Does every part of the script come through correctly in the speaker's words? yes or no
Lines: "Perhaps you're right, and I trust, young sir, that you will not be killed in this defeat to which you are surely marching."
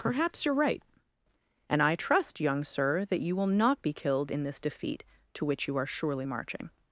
yes